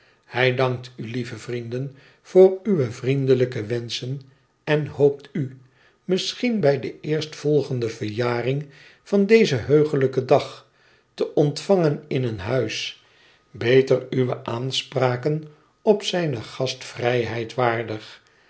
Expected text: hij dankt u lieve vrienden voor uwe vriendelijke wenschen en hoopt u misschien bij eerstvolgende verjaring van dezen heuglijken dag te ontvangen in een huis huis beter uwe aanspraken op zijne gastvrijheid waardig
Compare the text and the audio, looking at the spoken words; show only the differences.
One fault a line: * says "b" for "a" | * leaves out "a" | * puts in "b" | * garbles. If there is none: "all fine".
* puts in "de"
* leaves out "huis"